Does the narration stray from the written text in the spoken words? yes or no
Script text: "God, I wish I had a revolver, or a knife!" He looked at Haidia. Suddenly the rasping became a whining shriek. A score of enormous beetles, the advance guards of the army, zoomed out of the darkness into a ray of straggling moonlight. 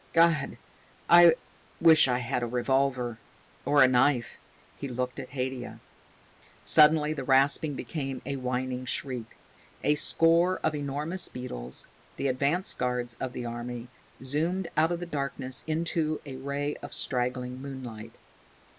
no